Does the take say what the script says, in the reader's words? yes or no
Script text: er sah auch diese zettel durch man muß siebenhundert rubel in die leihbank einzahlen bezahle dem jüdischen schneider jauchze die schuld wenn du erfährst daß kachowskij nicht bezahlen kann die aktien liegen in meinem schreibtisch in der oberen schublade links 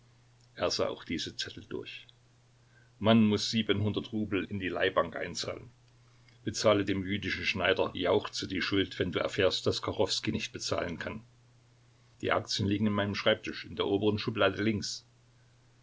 yes